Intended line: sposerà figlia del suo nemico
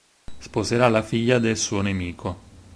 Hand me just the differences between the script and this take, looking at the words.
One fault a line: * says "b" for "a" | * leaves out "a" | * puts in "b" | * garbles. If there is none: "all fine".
* puts in "la"